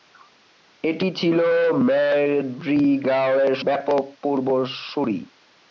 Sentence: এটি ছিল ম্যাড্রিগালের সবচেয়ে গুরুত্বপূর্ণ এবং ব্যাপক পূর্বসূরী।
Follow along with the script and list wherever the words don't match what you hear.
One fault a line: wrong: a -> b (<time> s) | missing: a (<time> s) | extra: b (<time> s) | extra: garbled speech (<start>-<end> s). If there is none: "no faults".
missing: সবচেয়ে গুরুত্বপূর্ণ এবং (3.5 s)